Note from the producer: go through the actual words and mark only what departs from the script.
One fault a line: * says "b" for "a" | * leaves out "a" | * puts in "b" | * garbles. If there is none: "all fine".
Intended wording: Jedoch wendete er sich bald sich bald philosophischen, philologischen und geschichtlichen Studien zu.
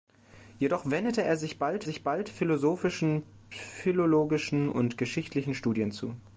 all fine